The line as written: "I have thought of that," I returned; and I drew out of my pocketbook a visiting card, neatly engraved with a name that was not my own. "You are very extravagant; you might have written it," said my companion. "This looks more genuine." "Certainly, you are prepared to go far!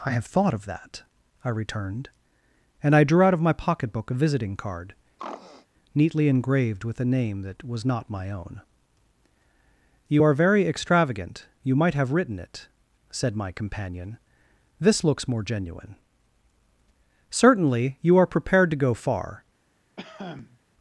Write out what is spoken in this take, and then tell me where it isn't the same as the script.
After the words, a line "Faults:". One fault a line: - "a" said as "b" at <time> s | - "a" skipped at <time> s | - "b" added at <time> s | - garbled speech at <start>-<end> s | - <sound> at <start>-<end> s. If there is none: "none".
"I have thought of that," I returned; and I drew out of my pocketbook a visiting card, neatly engraved with a name that was not my own. "You are very extravagant; you might have written it," said my companion. "This looks more genuine." "Certainly, you are prepared to go far!
Faults:
- throat clearing at 5.2-5.7 s
- cough at 20.0-20.6 s